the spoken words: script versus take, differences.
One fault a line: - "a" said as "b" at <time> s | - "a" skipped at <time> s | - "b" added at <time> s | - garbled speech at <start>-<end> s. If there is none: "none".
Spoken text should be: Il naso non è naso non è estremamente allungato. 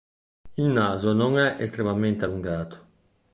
- "naso non è" skipped at 1.6 s